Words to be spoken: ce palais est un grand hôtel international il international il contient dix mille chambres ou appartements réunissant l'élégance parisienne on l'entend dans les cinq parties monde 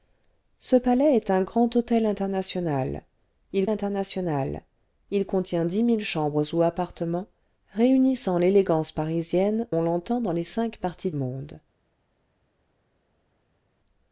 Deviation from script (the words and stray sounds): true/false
false